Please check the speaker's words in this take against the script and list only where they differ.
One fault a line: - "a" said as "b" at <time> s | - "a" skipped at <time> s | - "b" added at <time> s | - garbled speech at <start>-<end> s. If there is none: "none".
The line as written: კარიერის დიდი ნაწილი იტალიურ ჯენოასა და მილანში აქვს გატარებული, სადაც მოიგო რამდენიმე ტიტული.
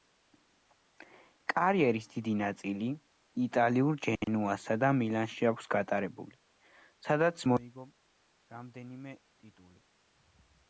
none